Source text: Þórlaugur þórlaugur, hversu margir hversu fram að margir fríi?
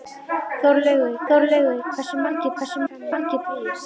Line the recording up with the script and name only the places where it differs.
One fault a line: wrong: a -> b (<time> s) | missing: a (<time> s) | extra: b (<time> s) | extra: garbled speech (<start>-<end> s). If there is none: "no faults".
no faults